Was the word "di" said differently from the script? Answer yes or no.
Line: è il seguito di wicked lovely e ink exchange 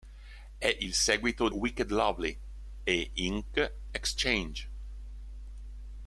yes